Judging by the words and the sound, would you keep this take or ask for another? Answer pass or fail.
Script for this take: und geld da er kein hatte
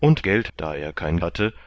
pass